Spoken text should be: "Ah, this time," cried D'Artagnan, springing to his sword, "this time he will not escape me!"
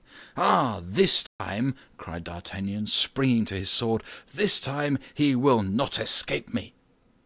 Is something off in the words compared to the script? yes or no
no